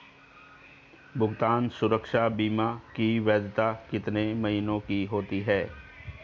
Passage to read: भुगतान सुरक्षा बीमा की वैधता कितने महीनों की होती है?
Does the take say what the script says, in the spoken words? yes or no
yes